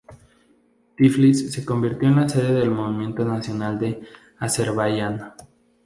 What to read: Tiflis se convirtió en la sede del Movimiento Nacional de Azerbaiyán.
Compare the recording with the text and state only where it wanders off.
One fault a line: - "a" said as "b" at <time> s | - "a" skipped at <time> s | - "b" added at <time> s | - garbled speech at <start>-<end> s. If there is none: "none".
none